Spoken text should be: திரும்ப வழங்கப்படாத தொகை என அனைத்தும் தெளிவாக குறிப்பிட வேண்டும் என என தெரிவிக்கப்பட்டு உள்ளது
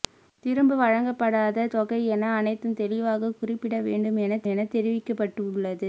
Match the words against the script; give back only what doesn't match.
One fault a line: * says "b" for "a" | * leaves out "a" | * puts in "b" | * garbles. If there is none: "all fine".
all fine